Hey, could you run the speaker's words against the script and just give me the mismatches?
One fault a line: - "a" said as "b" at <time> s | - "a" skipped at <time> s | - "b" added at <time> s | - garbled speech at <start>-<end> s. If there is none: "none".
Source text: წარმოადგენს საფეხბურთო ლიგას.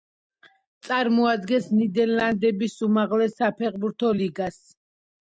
- "ნიდერლანდების უმაღლეს" added at 1.8 s